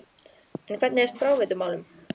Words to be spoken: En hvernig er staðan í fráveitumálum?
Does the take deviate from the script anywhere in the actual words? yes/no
yes